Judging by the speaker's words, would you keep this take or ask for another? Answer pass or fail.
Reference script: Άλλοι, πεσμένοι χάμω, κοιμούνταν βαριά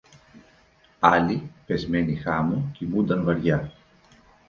pass